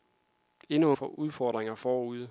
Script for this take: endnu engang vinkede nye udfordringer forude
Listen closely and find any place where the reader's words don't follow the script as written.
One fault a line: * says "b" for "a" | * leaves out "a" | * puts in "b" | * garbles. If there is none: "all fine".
* leaves out "engang vinkede nye"